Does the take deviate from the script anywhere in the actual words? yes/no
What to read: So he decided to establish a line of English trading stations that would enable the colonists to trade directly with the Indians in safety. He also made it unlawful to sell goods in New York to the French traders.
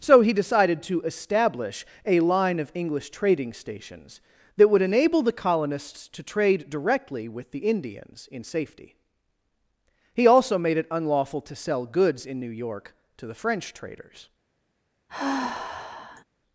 no